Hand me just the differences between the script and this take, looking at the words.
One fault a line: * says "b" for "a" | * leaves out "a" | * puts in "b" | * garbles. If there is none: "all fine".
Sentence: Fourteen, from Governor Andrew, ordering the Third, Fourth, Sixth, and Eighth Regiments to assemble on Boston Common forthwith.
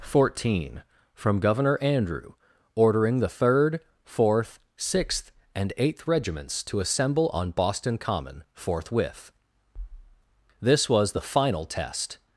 * puts in "This was the final test"